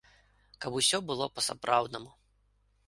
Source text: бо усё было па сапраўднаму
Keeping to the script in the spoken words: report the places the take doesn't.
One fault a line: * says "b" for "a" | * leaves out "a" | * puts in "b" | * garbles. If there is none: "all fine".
* says "каб" for "бо"